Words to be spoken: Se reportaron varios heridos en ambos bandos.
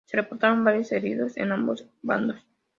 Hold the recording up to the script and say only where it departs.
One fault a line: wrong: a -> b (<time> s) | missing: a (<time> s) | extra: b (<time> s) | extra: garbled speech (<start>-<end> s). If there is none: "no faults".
no faults